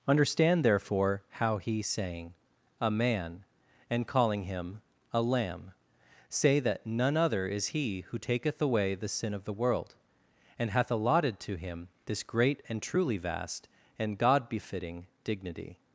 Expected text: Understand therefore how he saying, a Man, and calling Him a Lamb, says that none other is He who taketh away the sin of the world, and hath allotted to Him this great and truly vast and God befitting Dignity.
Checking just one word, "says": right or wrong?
wrong